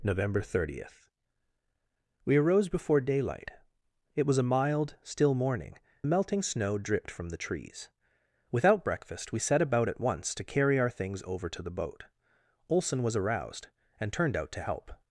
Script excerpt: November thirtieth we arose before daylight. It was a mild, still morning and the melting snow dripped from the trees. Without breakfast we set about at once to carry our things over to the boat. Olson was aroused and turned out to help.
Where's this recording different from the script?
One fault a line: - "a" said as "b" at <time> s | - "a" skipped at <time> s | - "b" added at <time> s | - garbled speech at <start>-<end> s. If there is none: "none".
- "and" skipped at 5.8 s